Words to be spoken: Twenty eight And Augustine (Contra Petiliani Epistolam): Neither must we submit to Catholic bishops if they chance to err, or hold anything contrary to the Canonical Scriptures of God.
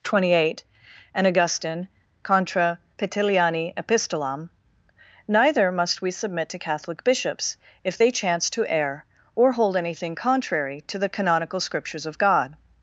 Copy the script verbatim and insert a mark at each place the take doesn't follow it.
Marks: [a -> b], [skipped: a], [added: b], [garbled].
Twenty eight And Augustine (Contra Petiliani Epistolam): Neither must we submit to Catholic bishops if they chance to err, or hold anything contrary to the Canonical Scriptures of God.